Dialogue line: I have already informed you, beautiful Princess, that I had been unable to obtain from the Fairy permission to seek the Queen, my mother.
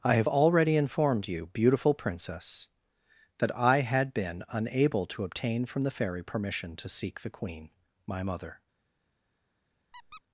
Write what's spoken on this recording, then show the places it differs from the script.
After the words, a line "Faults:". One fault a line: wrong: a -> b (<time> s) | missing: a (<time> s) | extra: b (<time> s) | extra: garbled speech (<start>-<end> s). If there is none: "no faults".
I have already informed you, beautiful Princess, that I had been unable to obtain from the Fairy permission to seek the Queen, my mother.
Faults:
no faults